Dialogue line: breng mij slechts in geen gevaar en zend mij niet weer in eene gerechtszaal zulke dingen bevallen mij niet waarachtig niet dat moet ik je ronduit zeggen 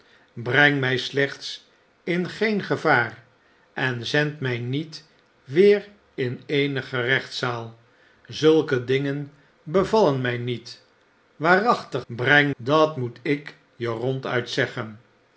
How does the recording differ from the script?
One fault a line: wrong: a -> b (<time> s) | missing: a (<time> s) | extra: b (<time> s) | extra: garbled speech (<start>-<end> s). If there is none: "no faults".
wrong: niet -> breng (12.1 s)